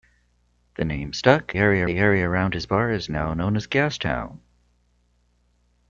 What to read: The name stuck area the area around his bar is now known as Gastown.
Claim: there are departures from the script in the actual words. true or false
false